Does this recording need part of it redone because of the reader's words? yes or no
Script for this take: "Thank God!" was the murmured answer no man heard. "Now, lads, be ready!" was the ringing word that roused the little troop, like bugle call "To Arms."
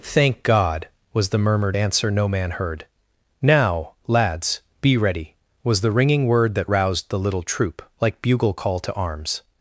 no